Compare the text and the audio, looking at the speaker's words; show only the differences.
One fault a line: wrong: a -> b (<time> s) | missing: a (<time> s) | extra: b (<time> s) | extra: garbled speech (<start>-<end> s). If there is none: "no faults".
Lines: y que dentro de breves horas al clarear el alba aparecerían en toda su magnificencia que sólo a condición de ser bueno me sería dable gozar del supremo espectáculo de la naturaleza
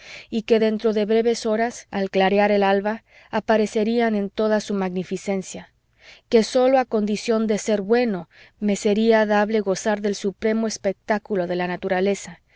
no faults